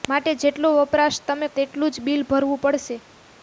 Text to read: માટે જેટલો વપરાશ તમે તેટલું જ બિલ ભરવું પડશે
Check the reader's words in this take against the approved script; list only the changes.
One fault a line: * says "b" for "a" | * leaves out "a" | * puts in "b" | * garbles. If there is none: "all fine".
all fine